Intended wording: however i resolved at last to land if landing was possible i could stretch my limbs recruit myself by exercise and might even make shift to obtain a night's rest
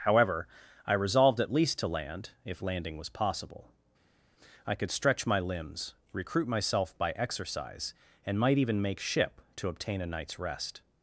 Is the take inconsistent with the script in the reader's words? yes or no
yes